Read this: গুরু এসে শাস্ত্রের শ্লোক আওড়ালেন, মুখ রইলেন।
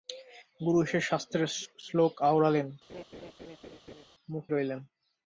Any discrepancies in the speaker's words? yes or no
no